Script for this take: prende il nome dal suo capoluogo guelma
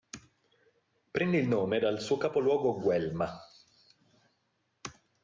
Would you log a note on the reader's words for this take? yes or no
no